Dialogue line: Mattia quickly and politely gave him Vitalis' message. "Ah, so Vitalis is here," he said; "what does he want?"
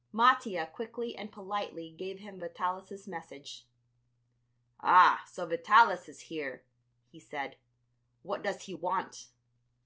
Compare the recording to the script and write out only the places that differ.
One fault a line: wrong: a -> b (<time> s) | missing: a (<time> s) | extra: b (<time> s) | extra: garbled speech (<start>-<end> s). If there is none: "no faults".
no faults